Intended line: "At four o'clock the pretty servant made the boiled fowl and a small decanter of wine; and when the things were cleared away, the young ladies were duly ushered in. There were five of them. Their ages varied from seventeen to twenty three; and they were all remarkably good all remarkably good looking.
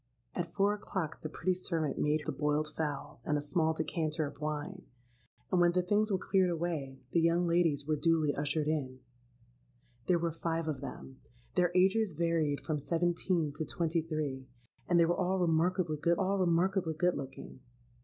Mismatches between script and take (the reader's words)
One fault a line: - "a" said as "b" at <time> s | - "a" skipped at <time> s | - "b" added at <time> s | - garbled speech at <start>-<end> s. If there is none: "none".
none